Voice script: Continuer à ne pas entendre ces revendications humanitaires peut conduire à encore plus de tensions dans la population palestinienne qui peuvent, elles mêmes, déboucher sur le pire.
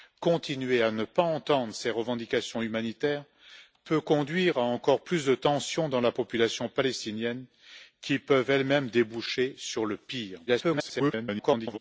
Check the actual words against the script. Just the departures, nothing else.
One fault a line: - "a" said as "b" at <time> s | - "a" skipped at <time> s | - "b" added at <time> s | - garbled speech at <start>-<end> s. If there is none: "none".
- garbled speech at 10.5-11.8 s